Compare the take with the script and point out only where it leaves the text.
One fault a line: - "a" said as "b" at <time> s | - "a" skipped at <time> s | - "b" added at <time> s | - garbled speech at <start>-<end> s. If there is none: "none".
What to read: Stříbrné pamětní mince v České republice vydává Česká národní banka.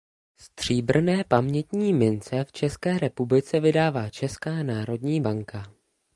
none